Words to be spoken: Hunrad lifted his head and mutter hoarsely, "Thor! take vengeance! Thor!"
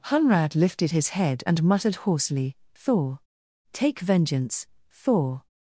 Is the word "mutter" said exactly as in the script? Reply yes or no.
no